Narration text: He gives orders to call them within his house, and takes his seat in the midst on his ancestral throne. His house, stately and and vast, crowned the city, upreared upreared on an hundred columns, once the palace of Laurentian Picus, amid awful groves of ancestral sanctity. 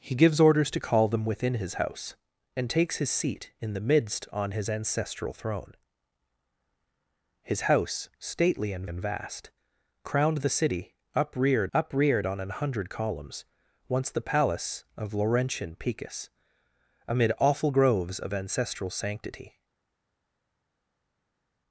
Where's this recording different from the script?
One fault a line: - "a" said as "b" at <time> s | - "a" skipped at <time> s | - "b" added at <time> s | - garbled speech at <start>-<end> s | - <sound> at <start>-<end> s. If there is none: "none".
none